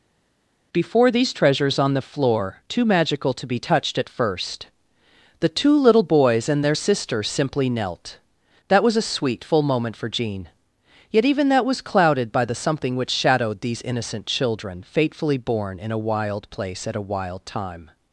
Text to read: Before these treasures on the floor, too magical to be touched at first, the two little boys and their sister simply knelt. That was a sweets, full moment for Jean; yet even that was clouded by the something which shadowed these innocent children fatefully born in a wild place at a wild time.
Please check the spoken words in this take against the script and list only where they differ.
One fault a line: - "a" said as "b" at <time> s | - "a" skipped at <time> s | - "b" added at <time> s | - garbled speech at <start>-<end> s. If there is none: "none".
- "sweets" said as "sweet" at 9.1 s